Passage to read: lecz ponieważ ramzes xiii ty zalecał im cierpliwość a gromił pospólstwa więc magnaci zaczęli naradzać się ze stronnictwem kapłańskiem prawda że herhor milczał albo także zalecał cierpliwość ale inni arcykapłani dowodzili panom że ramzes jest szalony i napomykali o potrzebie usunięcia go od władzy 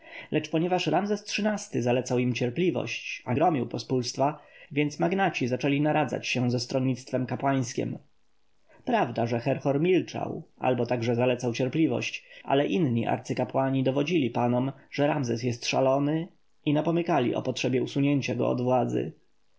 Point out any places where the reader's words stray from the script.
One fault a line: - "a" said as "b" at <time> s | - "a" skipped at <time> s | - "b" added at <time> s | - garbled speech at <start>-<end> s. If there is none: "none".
none